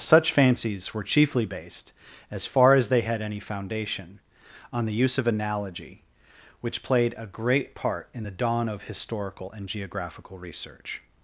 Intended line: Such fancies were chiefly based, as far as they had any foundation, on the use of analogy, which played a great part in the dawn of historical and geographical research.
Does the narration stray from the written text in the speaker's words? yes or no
no